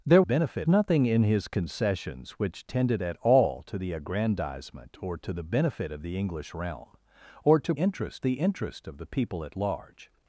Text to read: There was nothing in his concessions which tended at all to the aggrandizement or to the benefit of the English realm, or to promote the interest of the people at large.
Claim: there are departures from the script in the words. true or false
true